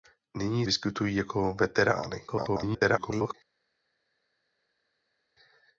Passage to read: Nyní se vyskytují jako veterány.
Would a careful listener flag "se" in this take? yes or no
yes